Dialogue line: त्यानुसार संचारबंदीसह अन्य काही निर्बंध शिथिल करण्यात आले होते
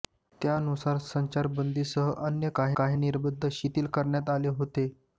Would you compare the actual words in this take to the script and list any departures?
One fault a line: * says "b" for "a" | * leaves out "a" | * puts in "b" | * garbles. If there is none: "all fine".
* puts in "काही"